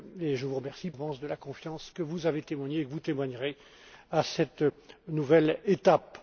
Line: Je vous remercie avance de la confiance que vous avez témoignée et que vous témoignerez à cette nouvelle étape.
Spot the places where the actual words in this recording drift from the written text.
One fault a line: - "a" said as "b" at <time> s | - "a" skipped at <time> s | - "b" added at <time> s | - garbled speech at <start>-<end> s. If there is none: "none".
none